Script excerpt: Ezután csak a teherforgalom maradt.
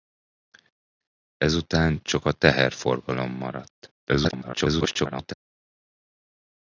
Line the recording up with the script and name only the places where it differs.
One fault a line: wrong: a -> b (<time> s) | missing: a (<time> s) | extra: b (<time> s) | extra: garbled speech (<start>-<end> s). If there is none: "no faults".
extra: garbled speech (4.0-5.3 s)